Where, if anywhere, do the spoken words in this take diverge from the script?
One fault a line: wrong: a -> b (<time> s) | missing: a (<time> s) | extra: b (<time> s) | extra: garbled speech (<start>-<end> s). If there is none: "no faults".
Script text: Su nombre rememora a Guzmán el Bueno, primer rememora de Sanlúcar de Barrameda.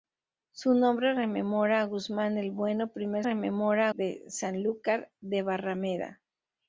no faults